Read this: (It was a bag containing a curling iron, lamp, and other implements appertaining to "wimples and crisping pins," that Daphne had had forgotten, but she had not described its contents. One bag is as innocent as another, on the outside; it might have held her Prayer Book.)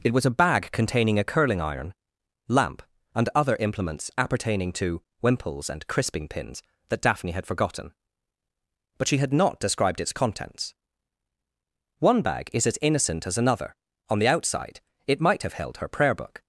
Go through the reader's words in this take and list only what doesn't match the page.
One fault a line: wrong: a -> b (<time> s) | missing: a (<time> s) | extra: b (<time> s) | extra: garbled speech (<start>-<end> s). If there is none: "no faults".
missing: had (7.5 s)